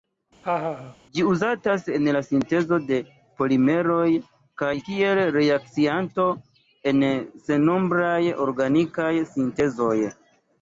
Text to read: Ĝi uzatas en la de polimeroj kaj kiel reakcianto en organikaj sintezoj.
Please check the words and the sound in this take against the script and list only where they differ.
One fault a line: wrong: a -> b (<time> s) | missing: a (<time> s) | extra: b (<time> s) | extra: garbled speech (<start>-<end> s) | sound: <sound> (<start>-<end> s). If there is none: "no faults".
sound: laugh (0.4-1.0 s)
extra: sintezo (2.2 s)
extra: sennombraj (7.5 s)